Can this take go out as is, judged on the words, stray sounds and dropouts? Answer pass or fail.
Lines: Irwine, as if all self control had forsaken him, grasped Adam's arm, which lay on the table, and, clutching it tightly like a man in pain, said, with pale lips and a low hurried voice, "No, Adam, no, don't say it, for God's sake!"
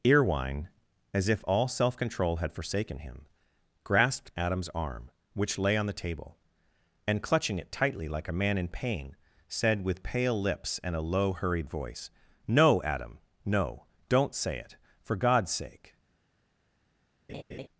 fail